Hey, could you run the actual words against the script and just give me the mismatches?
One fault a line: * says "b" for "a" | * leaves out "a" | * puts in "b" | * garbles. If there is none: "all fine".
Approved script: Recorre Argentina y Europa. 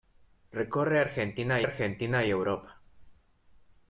* puts in "Argentina"